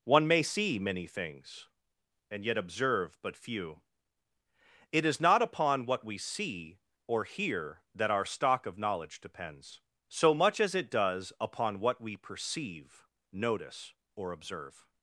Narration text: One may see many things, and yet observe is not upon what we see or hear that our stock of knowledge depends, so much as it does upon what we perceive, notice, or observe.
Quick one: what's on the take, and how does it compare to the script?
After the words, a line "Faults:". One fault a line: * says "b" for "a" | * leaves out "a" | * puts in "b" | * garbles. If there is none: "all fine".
One may see many things, and yet observe but few. It is not upon what we see or hear that our stock of knowledge depends, so much as it does upon what we perceive, notice, or observe.
Faults:
* puts in "but few It"